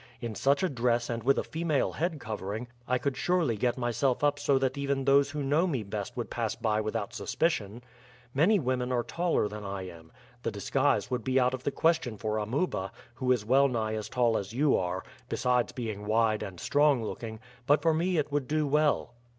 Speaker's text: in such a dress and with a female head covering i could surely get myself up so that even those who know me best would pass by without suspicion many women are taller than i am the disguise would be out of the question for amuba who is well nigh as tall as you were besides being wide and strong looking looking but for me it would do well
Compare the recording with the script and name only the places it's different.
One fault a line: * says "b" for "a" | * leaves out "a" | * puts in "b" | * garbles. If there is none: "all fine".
* says "are" for "were"
* leaves out "looking"